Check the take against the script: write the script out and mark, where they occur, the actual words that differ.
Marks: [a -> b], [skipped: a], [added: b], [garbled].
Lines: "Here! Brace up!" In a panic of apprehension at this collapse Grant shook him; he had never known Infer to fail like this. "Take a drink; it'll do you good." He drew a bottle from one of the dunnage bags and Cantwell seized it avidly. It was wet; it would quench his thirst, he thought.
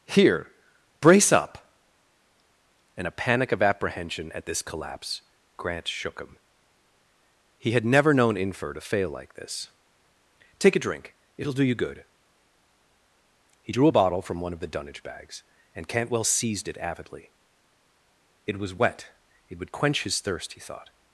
"Here! Brace up!" In a panic of apprehension at this collapse Grant shook him; he had never known Infer to fail like this. "Take a drink; it'll do you good." He drew a bottle from one of the dunnage bags and Cantwell seized it avidly. It was wet; it would quench his thirst, he thought.